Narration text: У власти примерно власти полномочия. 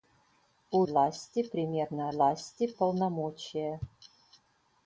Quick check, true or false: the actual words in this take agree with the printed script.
true